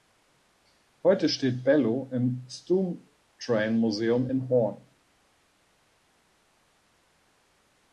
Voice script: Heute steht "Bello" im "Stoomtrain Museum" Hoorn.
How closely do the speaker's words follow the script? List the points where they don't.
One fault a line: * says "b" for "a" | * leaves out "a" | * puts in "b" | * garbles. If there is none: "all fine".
* puts in "in"